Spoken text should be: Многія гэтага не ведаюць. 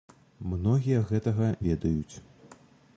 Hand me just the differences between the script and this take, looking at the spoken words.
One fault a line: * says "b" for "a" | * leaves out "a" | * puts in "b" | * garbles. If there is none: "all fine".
* leaves out "не"